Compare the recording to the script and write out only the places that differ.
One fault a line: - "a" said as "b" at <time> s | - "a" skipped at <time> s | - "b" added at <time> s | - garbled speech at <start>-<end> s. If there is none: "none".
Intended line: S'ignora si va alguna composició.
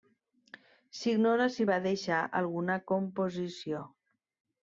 - "deixar" added at 1.9 s